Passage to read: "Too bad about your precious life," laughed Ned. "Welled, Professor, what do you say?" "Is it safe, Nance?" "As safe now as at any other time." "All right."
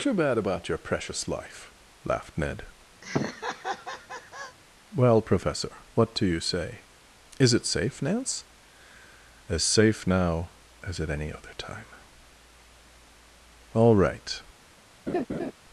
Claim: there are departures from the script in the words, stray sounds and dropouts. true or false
true